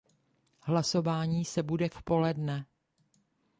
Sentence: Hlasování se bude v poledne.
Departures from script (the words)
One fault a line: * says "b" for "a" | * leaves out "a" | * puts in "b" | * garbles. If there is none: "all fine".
all fine